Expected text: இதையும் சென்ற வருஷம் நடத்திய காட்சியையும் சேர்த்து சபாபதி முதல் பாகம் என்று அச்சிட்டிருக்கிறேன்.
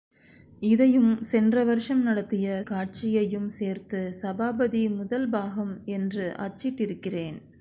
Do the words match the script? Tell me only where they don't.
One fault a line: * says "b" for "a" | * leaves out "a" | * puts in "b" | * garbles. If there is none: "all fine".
all fine